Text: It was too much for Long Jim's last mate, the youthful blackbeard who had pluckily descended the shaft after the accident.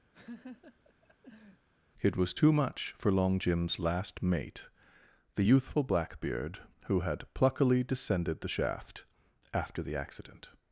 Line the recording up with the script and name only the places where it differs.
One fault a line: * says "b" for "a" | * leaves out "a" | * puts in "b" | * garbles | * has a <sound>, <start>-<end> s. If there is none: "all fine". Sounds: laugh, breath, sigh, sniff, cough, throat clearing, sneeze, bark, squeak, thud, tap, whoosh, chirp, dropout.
* has a laugh, 0.1-1.7 s